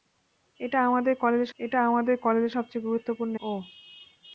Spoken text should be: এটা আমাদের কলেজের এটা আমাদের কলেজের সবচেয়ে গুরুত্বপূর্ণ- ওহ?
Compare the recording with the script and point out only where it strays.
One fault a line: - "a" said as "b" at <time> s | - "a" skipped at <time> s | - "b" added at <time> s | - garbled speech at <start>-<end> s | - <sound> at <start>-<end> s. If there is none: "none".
none